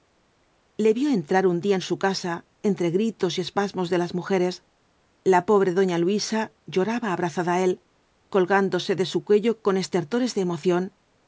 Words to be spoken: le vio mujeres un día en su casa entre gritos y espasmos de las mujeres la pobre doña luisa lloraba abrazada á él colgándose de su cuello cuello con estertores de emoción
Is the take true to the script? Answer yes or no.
no